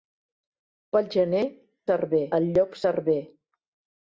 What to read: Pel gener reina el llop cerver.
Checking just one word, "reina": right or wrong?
wrong